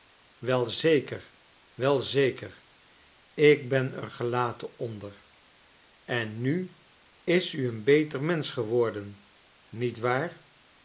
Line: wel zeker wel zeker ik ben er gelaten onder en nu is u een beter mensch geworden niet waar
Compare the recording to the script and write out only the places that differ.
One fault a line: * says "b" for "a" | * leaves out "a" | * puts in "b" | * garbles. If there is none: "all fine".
all fine